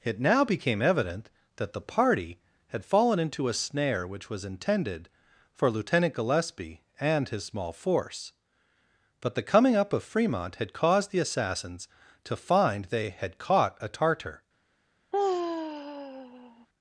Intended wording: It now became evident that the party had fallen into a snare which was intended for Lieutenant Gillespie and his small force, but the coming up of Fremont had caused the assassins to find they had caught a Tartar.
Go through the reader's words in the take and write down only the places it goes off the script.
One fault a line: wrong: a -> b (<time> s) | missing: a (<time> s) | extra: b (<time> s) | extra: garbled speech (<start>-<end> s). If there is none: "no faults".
no faults